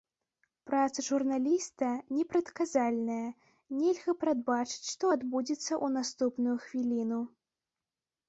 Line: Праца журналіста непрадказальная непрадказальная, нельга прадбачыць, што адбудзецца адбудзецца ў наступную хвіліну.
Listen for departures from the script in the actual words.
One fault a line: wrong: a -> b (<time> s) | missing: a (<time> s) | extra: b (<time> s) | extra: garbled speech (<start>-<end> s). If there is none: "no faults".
missing: непрадказальная (3.3 s)
missing: адбудзецца (5.7 s)